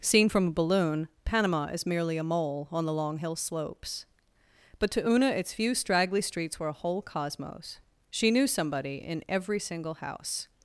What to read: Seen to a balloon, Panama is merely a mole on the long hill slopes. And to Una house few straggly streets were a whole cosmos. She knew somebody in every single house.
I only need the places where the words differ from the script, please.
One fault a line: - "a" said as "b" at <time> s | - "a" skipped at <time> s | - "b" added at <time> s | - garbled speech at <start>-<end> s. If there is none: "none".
- "to" said as "from" at 0.3 s
- "And" said as "But" at 4.8 s
- "house" said as "its" at 5.3 s